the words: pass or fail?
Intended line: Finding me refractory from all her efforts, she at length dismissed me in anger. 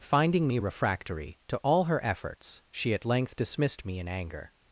fail